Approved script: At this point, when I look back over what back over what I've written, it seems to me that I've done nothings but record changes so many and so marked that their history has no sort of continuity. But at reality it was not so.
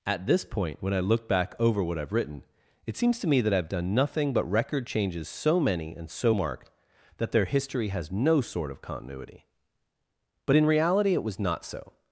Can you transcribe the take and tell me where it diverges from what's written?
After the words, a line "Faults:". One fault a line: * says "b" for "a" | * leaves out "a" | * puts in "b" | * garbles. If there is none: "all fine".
At this point, when I look back over what I've written, it seems to me that I've done nothing but record changes so many and so marked that their history has no sort of continuity. But in reality it was not so.
Faults:
* leaves out "back over what"
* says "nothing" for "nothings"
* says "in" for "at"